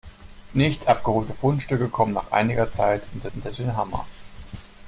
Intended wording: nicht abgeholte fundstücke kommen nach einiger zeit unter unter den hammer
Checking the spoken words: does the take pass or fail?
pass